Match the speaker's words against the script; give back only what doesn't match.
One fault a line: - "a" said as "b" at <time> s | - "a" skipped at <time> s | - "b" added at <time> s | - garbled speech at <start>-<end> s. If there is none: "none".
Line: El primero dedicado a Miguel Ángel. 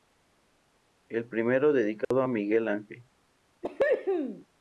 none